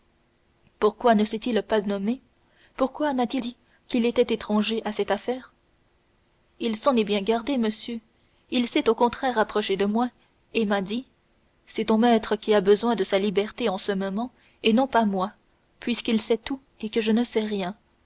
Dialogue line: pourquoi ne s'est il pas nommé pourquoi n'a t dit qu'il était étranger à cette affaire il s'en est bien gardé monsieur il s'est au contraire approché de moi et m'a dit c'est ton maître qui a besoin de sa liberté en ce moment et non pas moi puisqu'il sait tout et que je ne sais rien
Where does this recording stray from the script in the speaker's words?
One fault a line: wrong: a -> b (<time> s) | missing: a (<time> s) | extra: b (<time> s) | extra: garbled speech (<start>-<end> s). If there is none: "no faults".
no faults